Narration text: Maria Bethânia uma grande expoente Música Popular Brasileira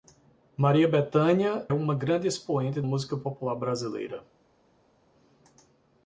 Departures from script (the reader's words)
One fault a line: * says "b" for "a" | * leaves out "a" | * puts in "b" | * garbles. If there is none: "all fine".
all fine